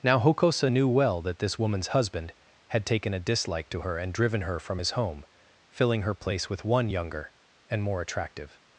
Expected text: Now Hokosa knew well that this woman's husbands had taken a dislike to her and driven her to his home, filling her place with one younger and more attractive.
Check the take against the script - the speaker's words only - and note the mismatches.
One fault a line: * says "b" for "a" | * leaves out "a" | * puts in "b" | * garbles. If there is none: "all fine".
* says "husband" for "husbands"
* says "from" for "to"